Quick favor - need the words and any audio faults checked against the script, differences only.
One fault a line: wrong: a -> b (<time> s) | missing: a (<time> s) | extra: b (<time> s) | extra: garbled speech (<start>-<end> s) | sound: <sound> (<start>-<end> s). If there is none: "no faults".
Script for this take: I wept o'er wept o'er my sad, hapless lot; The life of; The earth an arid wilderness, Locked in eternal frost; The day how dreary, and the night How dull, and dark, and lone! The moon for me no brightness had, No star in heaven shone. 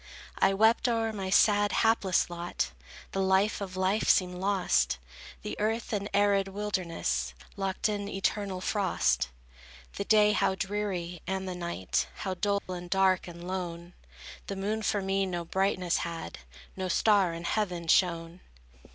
missing: wept o'er (1.1 s)
extra: life seemed lost (3.8 s)
sound: dropout (12.6-12.7 s)